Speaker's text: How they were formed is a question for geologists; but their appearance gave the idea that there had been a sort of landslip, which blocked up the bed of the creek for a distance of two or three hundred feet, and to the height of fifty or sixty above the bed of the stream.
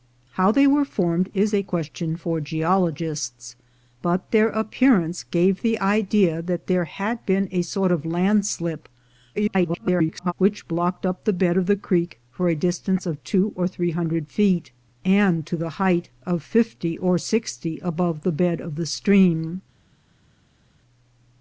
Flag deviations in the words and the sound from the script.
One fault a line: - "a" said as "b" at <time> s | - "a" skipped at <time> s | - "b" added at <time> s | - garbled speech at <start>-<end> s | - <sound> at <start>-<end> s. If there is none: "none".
- garbled speech at 9.3-10.3 s